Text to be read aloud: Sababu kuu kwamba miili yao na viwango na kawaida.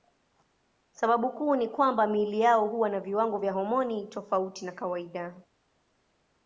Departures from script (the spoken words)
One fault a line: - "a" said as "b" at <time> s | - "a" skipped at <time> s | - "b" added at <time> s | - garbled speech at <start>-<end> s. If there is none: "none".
- "ni" added at 1.6 s
- "huwa" added at 2.7 s
- "vya homoni tofauti" added at 3.4 s